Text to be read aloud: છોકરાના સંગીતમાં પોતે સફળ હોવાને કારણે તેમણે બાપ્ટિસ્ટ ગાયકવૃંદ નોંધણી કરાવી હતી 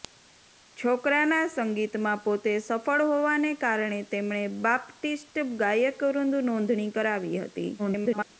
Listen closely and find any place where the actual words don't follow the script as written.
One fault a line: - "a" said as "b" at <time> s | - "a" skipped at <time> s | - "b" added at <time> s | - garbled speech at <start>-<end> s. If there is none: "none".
- garbled speech at 7.8-8.3 s